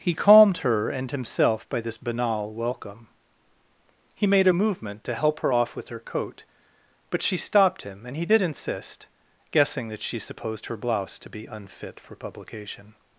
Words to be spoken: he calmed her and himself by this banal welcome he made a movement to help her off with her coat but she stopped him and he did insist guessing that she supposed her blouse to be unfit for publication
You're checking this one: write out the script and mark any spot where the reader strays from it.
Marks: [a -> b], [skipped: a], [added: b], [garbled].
he calmed her and himself by this banal welcome he made a movement to help her off with her coat but she stopped him and he did insist guessing that she supposed her blouse to be unfit for publication